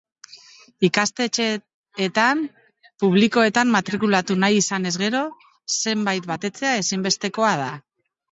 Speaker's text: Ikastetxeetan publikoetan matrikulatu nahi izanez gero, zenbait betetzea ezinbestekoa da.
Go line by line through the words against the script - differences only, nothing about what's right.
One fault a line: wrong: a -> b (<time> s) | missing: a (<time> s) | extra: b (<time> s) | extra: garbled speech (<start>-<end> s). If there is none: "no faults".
no faults